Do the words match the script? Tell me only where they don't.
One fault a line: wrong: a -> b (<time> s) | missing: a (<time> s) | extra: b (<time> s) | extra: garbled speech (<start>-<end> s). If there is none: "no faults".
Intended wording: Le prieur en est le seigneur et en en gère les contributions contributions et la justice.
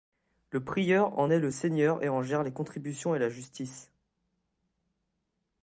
missing: en (2.2 s)
missing: contributions (3.1 s)